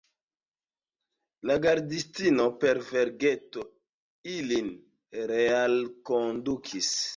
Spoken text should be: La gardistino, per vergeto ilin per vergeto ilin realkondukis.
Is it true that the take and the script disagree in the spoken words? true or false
true